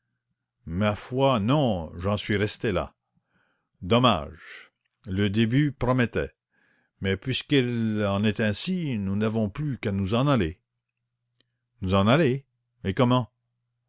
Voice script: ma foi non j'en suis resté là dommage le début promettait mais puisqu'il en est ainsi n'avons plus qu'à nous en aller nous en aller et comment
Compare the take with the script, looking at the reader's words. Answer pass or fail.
fail